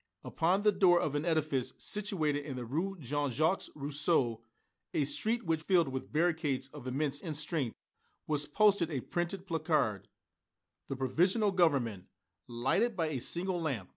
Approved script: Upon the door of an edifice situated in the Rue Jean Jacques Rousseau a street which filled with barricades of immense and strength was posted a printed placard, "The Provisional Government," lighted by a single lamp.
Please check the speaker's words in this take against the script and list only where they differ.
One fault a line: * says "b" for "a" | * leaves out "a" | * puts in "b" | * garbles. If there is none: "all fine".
all fine